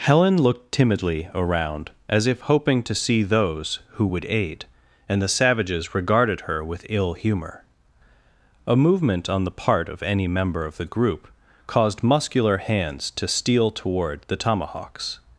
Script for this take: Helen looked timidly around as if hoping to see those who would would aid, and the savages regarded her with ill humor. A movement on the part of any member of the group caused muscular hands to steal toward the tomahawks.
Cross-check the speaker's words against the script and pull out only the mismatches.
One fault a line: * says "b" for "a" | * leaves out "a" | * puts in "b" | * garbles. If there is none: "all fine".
* leaves out "would"